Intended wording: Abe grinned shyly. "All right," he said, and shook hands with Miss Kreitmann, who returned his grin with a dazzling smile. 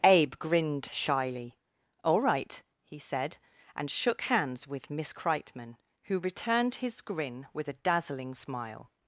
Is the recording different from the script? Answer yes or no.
no